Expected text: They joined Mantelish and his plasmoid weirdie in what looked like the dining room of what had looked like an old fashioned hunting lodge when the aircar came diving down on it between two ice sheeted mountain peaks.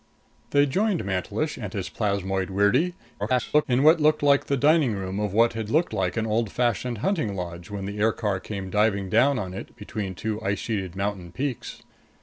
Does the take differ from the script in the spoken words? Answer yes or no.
yes